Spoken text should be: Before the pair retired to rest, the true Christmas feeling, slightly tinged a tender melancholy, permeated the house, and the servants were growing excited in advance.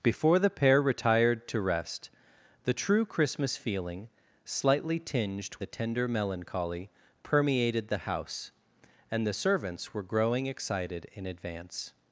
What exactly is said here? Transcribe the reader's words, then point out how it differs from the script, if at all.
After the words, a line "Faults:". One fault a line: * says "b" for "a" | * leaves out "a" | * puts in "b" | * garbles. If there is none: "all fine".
Before the pair retired to rest, the true Christmas feeling, slightly tinged a tender melancholy, permeated the house, and the servants were growing excited in advance.
Faults:
all fine